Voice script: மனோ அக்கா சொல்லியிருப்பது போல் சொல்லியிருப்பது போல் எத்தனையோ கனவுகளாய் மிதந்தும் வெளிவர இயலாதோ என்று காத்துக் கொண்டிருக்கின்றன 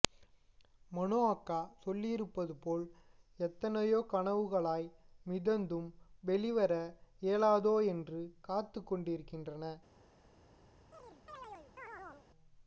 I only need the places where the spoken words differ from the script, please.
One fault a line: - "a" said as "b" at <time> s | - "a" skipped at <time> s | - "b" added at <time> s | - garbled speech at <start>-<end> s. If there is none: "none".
- "சொல்லியிருப்பது போல்" skipped at 2.9 s